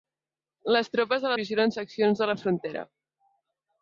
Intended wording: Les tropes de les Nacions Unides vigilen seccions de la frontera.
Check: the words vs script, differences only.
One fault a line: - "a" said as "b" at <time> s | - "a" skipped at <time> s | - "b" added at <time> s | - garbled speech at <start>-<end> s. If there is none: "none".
- "les Nacions Unides" skipped at 1.3 s